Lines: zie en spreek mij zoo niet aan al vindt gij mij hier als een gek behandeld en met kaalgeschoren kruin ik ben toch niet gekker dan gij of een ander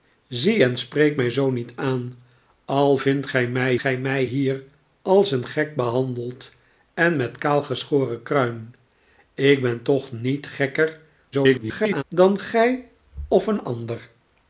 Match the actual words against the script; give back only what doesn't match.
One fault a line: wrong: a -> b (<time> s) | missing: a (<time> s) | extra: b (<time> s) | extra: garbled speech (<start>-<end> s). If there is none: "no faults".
extra: gij mij (3.8 s)
extra: garbled speech (11.3-12.0 s)